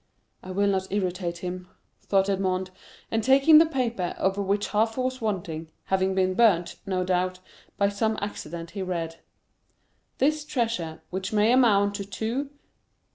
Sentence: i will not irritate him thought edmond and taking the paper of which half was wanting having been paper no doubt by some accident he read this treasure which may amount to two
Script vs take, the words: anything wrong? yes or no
yes